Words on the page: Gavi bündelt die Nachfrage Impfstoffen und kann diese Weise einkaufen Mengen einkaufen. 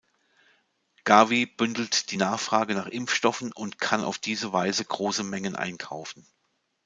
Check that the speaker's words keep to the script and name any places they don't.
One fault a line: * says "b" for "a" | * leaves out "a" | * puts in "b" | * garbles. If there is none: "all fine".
* puts in "nach"
* puts in "auf"
* says "große" for "einkaufen"